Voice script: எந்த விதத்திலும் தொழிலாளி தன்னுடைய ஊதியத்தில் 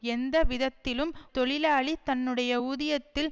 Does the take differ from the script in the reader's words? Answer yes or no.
no